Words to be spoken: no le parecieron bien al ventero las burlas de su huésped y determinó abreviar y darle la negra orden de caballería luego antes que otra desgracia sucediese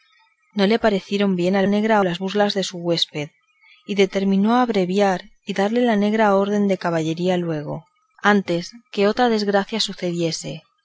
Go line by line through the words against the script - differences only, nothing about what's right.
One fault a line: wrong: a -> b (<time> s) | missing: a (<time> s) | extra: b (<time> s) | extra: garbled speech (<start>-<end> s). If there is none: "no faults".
wrong: ventero -> negra (1.6 s)